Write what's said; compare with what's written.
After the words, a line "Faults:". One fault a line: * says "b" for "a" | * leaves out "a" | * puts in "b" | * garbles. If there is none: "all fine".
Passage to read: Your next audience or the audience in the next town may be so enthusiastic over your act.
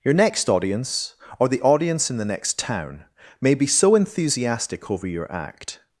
Your next audience or the audience in the next town may be so enthusiastic over your act.
Faults:
all fine